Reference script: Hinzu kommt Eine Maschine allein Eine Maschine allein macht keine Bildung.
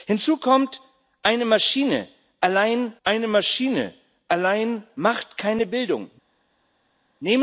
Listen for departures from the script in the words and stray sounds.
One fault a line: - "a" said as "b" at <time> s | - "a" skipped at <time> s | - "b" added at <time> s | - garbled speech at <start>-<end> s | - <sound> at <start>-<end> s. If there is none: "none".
none